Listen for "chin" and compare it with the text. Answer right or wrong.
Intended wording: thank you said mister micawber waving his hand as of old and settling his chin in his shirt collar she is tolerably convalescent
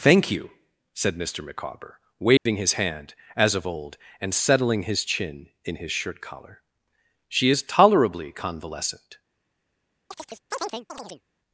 right